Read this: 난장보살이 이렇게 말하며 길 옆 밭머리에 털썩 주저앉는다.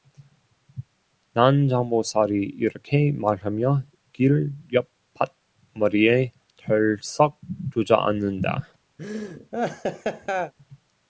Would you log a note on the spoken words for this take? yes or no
no